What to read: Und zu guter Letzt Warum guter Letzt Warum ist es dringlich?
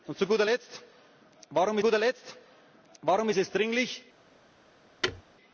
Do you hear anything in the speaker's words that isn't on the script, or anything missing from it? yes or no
no